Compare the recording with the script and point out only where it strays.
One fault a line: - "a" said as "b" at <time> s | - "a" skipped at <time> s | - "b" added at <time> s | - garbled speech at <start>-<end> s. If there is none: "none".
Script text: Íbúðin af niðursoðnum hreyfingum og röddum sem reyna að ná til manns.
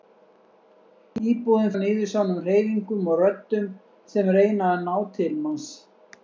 none